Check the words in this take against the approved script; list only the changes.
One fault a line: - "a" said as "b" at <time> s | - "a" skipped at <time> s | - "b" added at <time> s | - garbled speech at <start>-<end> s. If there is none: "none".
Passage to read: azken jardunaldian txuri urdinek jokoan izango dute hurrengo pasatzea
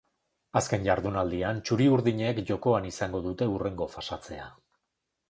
none